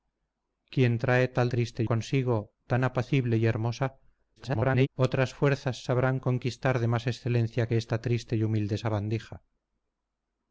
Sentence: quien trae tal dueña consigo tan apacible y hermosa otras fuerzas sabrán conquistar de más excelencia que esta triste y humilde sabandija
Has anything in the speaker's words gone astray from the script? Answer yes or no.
yes